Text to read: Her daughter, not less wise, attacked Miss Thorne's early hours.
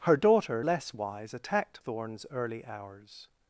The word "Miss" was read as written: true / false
false